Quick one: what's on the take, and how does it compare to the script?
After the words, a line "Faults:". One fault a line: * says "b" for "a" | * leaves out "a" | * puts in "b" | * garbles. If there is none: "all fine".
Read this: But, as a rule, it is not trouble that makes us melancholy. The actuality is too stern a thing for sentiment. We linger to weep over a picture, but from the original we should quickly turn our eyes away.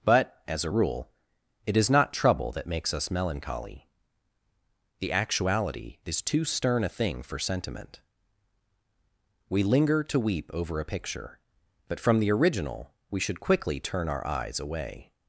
But, as a rule, it is not trouble that makes us melancholy. The actuality is too stern a thing for sentiment. We linger to weep over a picture, but from the original we should quickly turn our eyes away.
Faults:
all fine